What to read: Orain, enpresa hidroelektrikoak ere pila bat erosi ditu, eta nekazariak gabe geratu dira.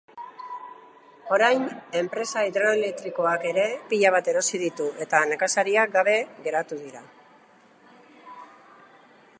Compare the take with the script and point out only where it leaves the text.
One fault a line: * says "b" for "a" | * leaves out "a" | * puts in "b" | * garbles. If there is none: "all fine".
all fine